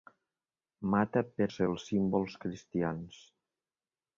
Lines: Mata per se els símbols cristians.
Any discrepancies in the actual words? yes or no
no